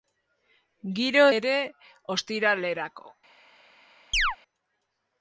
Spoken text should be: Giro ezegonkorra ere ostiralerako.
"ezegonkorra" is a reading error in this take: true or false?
true